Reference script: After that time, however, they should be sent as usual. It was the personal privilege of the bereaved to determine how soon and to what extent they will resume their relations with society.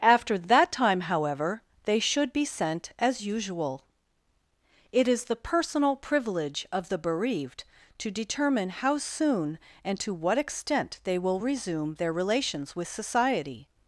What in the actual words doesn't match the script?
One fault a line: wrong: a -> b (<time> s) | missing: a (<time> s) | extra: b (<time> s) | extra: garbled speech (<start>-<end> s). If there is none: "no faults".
wrong: was -> is (5.1 s)